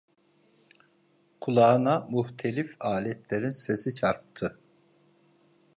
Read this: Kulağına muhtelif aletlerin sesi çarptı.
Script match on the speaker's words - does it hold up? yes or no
yes